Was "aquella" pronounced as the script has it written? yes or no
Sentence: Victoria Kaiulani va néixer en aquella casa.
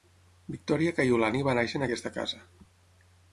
no